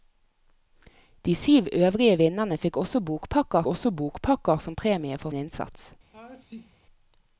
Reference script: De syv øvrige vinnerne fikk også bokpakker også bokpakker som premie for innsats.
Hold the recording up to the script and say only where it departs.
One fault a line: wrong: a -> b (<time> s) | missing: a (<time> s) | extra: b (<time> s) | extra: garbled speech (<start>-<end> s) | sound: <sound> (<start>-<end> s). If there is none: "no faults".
sound: sneeze (6.1-6.8 s)